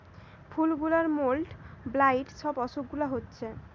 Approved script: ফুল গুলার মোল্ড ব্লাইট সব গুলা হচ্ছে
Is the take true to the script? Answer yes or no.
no